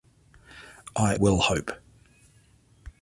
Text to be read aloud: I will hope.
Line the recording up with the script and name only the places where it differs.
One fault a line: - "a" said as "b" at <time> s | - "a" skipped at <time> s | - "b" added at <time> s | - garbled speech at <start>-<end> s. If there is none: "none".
none